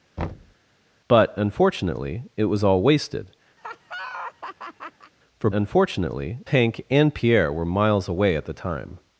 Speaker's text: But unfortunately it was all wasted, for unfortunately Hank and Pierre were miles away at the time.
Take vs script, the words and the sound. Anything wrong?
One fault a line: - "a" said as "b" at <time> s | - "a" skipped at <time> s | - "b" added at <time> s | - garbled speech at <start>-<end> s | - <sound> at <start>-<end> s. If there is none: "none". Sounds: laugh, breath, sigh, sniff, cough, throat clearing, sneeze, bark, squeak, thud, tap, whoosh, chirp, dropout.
- thud at 0.2-0.6 s
- laugh at 3.6-5.1 s